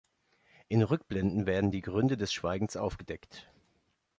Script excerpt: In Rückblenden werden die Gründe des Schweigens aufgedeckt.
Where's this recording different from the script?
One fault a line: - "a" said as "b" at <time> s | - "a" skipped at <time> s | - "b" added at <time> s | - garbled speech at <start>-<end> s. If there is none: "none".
none